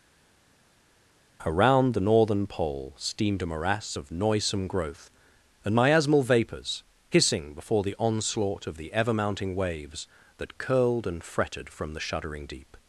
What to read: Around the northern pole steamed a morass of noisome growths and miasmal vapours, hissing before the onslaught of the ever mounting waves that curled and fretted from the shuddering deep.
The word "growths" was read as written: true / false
false